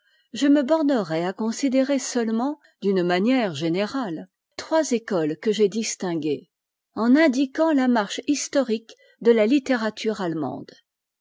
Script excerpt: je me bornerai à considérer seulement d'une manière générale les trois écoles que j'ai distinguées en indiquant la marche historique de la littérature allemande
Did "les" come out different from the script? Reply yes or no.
yes